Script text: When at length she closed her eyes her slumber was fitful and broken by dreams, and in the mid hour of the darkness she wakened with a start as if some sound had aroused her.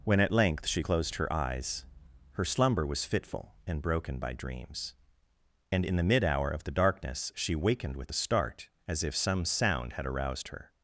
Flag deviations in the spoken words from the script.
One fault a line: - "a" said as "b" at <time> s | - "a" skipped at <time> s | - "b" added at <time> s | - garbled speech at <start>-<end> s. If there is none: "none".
none